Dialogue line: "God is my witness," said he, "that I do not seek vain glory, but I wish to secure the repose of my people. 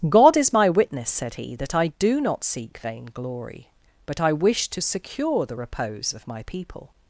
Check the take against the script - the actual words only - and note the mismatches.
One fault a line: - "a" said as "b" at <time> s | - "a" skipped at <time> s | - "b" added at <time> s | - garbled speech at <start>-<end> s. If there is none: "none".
none